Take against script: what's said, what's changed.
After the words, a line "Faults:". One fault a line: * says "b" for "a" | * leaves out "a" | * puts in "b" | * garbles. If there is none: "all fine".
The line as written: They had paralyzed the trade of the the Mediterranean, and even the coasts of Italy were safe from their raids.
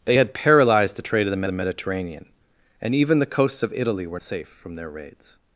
They had paralyzed the trade of the the Mediterranean, and even the coasts of Italy were safe from their raids.
Faults:
all fine